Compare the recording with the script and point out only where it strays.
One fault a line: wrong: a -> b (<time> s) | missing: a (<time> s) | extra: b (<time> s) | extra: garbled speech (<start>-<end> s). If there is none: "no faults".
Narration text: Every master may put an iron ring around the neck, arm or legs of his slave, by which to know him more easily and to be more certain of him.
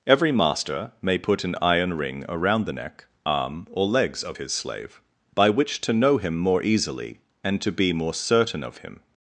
no faults